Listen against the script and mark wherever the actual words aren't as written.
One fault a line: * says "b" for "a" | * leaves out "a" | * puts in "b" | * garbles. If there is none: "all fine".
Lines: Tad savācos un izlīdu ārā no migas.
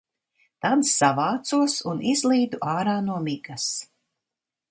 all fine